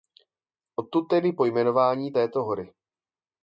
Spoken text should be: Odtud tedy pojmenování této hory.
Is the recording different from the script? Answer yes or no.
no